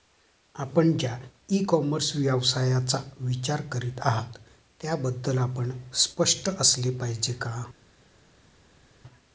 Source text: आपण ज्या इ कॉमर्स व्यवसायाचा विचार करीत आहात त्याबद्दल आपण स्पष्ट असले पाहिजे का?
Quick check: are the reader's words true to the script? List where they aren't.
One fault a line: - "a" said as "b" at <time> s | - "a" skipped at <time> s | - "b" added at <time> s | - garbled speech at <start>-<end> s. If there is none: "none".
none